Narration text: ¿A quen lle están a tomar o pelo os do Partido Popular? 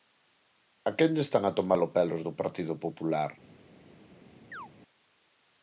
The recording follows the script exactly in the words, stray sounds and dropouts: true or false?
false